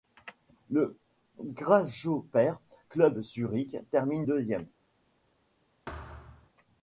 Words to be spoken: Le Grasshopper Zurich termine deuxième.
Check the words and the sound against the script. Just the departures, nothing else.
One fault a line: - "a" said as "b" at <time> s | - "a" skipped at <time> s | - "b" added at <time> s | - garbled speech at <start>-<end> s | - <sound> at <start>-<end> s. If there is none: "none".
- "Club" added at 2.9 s
- thud at 5.9-6.5 s